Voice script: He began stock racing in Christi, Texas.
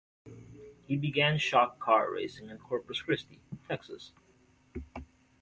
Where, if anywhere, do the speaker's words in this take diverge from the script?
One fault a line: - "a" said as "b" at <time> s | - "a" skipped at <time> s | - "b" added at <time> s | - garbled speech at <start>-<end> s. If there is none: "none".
- "car" added at 1.8 s
- "Corpus" added at 2.6 s